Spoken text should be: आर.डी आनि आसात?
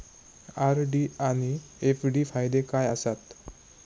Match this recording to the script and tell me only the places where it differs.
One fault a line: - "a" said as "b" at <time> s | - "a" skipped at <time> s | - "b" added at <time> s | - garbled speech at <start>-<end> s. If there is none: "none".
- "एफ.डी फायदे काय" added at 1.8 s